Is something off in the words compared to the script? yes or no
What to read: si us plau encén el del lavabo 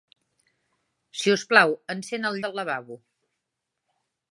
no